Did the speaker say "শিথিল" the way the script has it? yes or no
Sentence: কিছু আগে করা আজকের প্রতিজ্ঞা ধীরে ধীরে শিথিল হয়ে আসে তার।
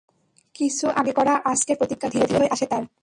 no